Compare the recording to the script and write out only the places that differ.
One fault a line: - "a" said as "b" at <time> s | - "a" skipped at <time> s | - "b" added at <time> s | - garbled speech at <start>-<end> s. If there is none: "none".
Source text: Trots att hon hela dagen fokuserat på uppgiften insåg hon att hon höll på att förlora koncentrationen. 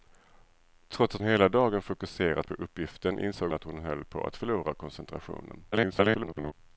- "hon" skipped at 1.2 s
- "hon" skipped at 3.5 s
- garbled speech at 5.7-6.5 s